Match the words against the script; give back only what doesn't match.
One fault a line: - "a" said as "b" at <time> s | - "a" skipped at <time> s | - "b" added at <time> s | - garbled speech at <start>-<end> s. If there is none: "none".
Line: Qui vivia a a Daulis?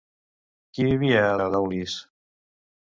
none